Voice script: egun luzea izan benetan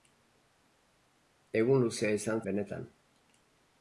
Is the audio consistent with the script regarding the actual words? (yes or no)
yes